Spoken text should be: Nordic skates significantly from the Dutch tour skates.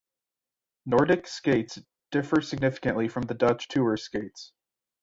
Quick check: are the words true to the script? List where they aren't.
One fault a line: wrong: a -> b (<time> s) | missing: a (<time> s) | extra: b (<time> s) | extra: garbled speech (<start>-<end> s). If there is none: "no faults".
extra: differ (2.1 s)